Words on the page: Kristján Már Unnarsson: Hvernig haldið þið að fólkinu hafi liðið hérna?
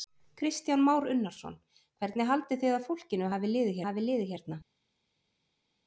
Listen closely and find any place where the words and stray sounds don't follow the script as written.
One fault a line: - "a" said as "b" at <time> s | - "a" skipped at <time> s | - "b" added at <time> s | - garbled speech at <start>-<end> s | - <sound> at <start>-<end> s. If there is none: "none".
- "hafi liðið" added at 3.9 s